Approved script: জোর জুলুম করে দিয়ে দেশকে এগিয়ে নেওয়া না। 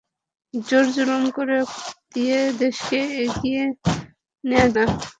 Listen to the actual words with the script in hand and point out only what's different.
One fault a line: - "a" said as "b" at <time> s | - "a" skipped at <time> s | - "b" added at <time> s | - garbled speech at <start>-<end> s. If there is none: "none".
none